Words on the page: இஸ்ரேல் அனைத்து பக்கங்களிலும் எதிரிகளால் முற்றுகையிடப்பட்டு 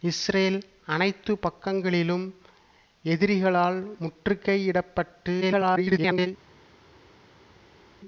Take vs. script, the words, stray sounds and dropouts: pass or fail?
fail